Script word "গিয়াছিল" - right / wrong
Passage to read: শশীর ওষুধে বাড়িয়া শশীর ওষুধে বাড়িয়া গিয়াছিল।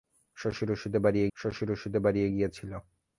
right